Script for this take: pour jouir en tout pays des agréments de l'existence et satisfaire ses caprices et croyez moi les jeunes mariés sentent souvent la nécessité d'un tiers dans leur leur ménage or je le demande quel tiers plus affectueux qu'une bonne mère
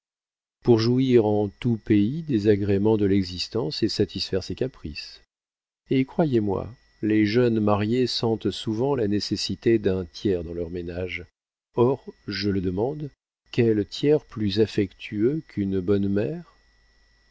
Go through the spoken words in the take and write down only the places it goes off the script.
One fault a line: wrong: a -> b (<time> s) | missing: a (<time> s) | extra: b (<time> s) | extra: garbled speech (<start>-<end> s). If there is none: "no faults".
missing: leur (10.7 s)